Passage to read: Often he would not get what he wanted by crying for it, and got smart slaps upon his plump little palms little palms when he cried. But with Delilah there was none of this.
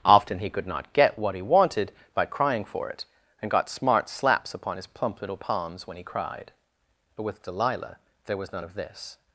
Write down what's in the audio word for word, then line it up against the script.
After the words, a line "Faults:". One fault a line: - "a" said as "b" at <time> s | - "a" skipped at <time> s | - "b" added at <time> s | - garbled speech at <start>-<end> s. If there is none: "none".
Often he could not get what he wanted by crying for it, and got smart slaps upon his plump little palms when he cried. But with Delilah there was none of this.
Faults:
- "would" said as "could" at 0.5 s
- "little palms" skipped at 5.9 s